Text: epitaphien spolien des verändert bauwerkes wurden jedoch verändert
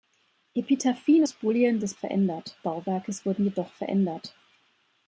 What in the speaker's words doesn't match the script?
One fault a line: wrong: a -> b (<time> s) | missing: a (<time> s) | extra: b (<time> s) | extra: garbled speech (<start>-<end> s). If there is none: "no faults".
no faults